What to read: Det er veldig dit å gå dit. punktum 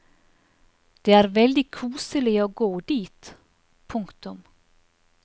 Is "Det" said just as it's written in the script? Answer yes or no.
yes